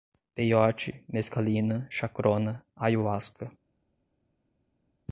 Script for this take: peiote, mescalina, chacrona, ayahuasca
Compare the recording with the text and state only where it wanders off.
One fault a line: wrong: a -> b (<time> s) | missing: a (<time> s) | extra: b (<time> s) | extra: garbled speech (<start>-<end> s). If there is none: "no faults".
no faults